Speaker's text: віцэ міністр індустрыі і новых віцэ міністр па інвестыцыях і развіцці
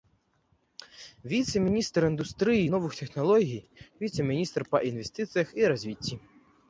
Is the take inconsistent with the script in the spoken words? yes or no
yes